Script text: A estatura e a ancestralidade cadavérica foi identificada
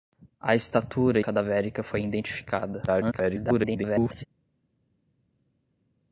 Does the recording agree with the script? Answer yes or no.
no